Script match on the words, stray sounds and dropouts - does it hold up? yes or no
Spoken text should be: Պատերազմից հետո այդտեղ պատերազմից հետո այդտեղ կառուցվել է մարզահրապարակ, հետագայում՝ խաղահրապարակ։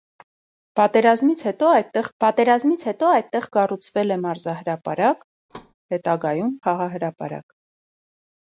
no